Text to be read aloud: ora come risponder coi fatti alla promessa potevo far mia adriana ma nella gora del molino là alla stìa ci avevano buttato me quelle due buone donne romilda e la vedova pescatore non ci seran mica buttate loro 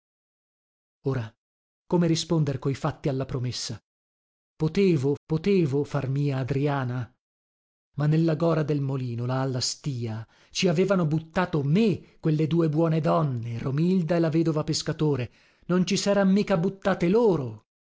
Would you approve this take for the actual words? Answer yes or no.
no